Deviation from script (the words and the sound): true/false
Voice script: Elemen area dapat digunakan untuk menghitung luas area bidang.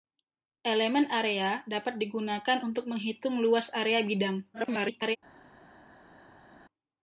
true